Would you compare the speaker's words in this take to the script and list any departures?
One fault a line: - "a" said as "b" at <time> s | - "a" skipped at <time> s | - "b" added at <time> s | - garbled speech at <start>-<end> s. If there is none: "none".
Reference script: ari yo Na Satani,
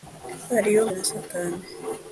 none